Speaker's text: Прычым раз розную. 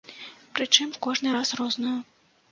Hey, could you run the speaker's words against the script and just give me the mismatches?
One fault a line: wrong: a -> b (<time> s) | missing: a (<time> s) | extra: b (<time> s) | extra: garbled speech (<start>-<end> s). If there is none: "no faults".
extra: кожны (1.1 s)